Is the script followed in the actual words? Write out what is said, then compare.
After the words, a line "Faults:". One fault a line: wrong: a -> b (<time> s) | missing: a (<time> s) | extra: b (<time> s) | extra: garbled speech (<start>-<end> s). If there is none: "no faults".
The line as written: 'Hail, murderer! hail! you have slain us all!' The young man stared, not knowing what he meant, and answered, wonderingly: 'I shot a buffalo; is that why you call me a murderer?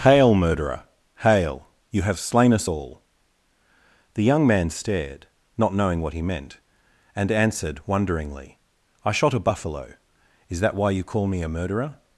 'Hail, murderer! hail! you have slain us all!' The young man stared, not knowing what he meant, and answered, wonderingly: 'I shot a buffalo; is that why you call me a murderer?
Faults:
no faults